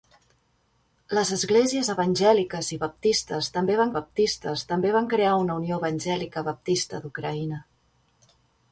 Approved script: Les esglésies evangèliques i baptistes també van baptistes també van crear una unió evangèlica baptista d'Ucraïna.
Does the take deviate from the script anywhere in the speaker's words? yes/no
no